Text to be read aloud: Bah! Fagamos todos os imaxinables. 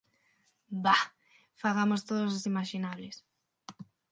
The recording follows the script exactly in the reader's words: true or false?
true